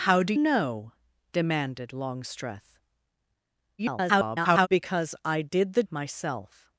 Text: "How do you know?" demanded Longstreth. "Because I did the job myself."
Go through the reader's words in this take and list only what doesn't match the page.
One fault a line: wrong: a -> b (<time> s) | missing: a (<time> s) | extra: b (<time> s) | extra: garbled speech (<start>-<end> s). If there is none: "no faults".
missing: you (0.3 s)
extra: garbled speech (3.8-4.7 s)
missing: job (5.8 s)